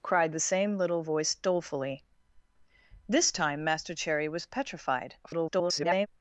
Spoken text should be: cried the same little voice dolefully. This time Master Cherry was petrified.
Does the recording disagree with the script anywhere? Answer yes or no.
yes